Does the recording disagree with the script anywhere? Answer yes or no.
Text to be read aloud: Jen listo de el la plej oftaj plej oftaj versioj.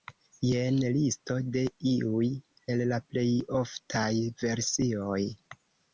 yes